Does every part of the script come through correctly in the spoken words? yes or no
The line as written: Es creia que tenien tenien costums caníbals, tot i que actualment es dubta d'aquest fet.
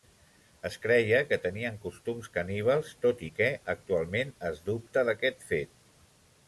no